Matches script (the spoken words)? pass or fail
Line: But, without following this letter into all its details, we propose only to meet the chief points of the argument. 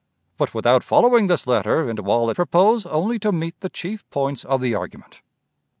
fail